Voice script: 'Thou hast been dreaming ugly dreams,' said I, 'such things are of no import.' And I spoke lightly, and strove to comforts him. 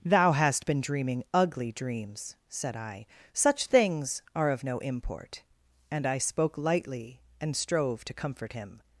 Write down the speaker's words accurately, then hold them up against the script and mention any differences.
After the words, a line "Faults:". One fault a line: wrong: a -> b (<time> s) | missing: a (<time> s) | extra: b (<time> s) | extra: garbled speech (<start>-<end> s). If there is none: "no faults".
'Thou hast been dreaming ugly dreams,' said I, 'such things are of no import.' And I spoke lightly, and strove to comfort him.
Faults:
wrong: comforts -> comfort (8.1 s)